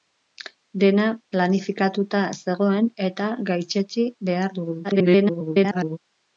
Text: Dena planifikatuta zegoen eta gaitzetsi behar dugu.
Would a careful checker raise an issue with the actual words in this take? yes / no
yes